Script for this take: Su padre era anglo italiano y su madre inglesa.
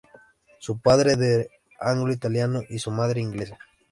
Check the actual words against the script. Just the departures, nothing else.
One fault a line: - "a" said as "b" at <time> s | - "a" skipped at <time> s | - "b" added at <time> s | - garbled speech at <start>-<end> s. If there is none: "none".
- "era" skipped at 1.5 s